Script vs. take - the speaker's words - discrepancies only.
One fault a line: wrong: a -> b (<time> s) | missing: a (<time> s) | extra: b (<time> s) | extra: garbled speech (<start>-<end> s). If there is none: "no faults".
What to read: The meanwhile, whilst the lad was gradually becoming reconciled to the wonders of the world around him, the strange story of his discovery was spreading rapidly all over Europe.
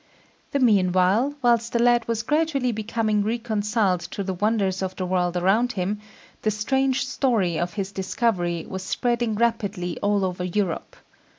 no faults